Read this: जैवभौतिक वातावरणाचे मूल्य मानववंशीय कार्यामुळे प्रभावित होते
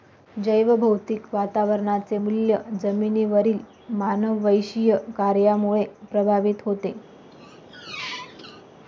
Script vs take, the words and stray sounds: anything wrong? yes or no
yes